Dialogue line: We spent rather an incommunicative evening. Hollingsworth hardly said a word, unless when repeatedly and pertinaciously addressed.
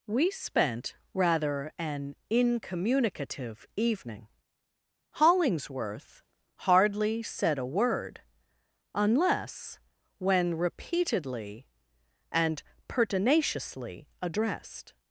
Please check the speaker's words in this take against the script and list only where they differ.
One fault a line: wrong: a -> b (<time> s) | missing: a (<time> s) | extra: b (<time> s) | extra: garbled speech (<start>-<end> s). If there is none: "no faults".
no faults